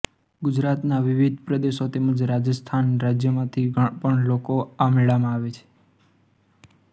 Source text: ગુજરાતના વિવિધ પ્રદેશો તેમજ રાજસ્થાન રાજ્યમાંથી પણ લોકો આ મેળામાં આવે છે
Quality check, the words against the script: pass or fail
pass